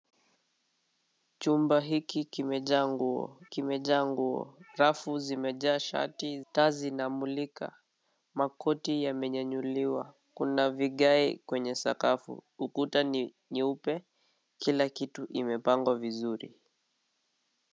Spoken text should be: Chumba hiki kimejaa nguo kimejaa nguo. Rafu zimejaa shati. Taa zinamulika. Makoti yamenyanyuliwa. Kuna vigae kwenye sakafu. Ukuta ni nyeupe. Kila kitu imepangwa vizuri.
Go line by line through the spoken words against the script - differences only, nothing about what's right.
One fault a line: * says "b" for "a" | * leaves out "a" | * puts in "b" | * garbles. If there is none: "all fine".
all fine